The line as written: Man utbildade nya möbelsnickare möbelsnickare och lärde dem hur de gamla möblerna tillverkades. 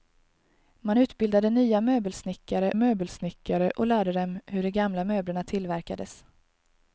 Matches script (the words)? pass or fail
pass